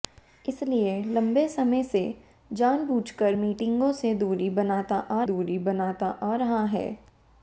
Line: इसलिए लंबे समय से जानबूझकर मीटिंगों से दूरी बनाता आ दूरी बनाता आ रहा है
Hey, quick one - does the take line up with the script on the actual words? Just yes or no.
yes